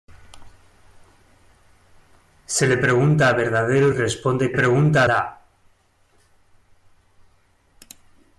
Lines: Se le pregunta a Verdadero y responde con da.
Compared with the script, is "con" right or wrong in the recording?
wrong